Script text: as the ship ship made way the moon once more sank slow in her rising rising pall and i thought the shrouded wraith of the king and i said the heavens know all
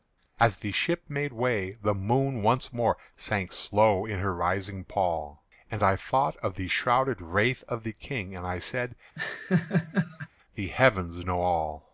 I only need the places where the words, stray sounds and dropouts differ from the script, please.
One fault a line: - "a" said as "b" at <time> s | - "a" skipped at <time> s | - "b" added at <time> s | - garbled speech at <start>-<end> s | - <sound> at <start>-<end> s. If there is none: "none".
- "ship" skipped at 1.0 s
- "rising" skipped at 4.8 s
- "of" added at 6.4 s
- laugh at 9.2-10.3 s